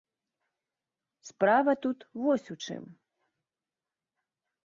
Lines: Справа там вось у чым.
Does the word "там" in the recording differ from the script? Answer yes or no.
yes